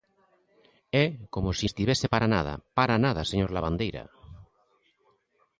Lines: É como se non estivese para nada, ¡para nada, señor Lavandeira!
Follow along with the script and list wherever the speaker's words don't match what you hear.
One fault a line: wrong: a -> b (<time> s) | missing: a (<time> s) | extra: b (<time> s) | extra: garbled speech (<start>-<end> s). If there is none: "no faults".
missing: non (1.7 s)